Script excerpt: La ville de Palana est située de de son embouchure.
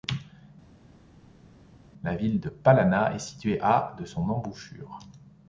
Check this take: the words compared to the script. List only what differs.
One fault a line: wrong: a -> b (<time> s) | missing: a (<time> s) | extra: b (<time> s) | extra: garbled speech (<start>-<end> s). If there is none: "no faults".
wrong: de -> à (3.6 s)